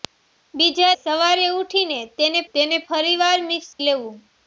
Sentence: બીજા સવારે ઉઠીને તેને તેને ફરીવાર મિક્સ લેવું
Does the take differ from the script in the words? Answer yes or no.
no